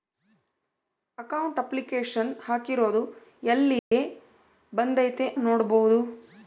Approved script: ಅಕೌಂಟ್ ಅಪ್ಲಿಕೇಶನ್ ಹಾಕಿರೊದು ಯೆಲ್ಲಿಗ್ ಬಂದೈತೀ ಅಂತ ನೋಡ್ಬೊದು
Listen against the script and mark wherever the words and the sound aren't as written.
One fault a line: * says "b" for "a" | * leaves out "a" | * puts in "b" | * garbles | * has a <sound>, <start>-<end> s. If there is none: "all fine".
* has a dropout, 3.8-3.9 s
* leaves out "ಅಂತ"